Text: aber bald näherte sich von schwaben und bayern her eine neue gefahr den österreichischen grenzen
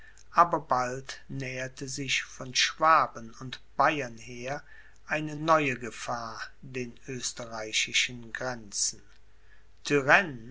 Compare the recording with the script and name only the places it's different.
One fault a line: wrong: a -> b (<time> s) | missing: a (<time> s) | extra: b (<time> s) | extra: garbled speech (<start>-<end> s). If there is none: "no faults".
no faults